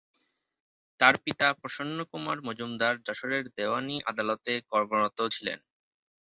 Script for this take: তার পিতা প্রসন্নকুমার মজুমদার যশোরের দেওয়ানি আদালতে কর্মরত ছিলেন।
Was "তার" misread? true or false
false